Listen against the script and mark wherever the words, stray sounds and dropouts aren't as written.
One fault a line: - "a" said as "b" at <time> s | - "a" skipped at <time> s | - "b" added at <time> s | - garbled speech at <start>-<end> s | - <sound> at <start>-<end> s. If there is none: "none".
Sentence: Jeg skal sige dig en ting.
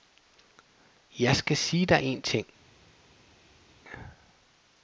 none